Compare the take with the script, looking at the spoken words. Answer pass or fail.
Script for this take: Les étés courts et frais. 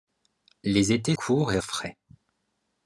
pass